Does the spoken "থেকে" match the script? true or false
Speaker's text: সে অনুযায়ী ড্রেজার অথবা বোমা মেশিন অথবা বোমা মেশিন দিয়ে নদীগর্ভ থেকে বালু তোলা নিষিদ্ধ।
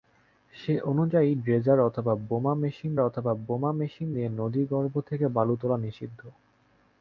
true